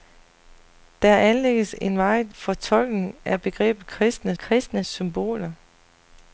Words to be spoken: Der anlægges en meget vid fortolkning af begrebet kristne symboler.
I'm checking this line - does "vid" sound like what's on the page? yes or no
no